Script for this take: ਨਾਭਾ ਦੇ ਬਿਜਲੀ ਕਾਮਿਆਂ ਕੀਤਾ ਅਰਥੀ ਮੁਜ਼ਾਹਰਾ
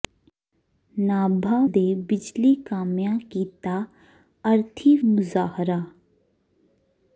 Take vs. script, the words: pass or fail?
pass